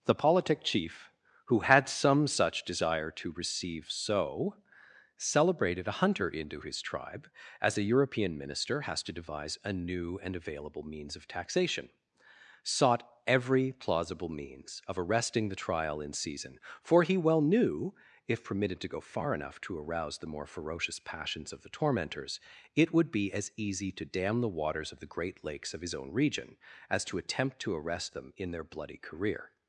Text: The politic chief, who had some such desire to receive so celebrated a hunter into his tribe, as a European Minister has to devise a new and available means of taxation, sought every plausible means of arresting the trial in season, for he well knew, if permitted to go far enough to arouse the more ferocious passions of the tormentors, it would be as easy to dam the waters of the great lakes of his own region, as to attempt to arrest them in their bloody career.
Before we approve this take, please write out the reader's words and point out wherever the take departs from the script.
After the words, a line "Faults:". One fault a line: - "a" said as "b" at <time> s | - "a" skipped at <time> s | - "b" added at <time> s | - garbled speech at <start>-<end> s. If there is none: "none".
The politic chief, who had some such desire to receive so celebrated a hunter into his tribe, as a European Minister has to devise a new and available means of taxation, sought every plausible means of arresting the trial in season, for he well knew, if permitted to go far enough to arouse the more ferocious passions of the tormentors, it would be as easy to dam the waters of the great lakes of his own region, as to attempt to arrest them in their bloody career.
Faults:
none